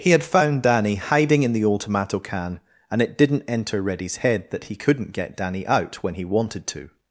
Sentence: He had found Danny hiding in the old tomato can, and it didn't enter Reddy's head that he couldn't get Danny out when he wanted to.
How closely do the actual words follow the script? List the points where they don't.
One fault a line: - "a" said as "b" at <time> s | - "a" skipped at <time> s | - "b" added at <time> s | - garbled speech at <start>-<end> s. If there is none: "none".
none